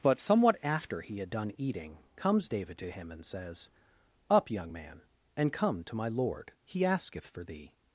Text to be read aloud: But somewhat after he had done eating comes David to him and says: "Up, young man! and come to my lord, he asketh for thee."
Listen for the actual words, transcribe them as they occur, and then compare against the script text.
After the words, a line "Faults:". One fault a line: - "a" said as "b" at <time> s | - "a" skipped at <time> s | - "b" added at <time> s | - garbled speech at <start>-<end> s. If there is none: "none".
But somewhat after he had done eating comes David to him and says: "Up, young man! and come to my lord, he asketh for thee."
Faults:
none